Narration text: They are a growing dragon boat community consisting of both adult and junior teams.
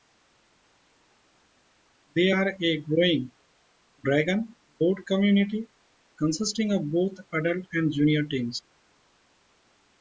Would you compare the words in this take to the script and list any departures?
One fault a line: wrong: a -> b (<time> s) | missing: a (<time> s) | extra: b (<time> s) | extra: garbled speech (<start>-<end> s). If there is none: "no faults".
no faults